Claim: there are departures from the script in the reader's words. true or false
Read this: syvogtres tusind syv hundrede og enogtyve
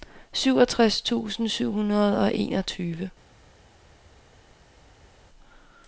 false